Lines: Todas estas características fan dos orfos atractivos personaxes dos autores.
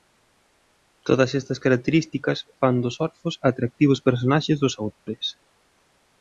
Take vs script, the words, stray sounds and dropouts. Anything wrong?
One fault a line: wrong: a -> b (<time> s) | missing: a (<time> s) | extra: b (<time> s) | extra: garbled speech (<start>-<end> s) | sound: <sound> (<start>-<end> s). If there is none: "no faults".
sound: dropout (4.9-5.1 s)